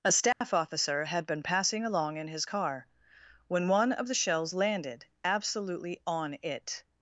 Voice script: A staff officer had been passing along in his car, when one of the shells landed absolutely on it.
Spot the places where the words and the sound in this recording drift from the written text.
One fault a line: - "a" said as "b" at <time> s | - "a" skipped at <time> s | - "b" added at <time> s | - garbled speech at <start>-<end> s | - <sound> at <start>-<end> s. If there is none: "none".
- dropout at 0.3-0.4 s